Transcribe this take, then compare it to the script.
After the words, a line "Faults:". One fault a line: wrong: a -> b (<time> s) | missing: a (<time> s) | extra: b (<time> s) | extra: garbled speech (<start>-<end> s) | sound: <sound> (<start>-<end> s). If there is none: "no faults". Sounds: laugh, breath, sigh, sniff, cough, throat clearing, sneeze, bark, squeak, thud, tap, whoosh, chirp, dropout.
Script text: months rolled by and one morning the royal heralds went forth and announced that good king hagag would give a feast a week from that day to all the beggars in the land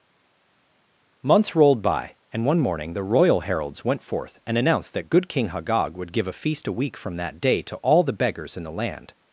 months rolled by and one morning the royal heralds went forth and announced that good king hagag would give a feast a week from that day to all the beggars in the land
Faults:
no faults